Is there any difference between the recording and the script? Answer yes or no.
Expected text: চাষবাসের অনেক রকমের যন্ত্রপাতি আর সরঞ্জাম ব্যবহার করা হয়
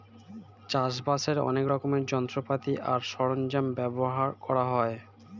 no